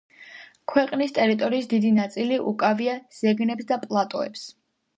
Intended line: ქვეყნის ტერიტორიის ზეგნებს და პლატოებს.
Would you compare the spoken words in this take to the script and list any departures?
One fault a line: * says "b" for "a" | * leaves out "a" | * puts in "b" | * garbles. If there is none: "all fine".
* puts in "დიდი ნაწილი უკავია"